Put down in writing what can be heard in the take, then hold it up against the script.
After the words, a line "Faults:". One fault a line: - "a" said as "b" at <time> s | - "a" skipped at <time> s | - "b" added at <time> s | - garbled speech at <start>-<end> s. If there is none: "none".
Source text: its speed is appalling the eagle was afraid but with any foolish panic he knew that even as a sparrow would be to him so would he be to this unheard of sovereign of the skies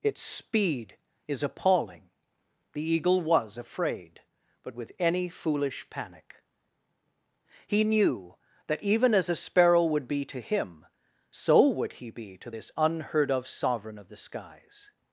its speed is appalling the eagle was afraid but with any foolish panic he knew that even as a sparrow would be to him so would he be to this unheard of sovereign of the skies
Faults:
none